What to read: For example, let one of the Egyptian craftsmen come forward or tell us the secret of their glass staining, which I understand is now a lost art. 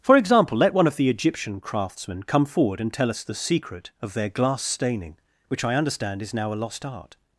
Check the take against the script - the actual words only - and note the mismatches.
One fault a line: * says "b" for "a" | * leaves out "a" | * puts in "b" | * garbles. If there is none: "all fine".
* says "and" for "or"